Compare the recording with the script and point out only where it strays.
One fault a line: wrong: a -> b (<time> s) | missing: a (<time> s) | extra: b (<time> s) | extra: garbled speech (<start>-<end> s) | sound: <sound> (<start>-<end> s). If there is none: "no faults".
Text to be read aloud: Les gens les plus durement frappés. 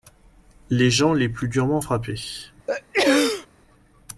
sound: sneeze (2.7-3.5 s)